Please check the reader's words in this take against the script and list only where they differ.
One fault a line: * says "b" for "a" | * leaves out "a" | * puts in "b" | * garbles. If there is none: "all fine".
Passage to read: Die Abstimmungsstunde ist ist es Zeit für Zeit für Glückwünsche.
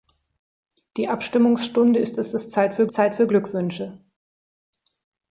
all fine